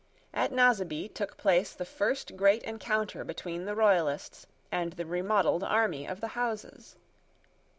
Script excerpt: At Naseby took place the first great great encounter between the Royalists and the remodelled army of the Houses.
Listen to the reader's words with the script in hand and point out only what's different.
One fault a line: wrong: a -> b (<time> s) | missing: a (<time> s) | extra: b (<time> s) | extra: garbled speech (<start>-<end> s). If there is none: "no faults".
missing: great (2.6 s)